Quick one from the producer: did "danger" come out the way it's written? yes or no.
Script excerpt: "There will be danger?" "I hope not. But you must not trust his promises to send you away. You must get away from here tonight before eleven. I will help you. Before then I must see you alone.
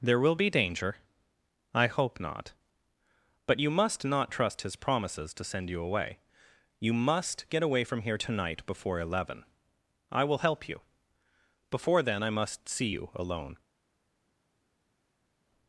yes